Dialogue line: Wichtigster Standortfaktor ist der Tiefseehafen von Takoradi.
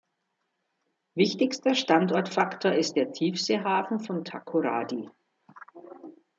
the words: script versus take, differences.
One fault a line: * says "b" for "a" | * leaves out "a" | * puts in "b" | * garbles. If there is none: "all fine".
all fine